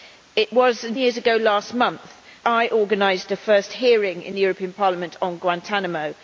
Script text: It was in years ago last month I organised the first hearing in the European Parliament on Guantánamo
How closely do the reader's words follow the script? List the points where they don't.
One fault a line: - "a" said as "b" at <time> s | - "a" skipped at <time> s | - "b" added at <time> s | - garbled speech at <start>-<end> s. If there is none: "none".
none